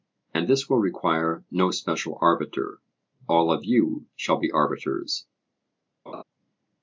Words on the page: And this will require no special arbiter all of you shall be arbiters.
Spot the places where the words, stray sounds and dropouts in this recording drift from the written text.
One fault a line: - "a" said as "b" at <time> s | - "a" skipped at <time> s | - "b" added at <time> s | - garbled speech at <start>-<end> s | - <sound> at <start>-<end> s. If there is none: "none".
- laugh at 6.1-6.2 s